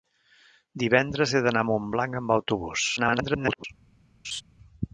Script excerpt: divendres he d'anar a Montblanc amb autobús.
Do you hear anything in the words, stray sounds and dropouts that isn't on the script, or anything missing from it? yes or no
yes